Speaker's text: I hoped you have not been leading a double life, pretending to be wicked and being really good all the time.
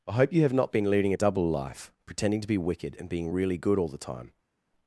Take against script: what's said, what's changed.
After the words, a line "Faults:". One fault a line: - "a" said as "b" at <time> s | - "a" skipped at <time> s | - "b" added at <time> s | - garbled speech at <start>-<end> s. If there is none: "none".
I hope you have not been leading a double life, pretending to be wicked and being really good all the time.
Faults:
- "hoped" said as "hope" at 0.1 s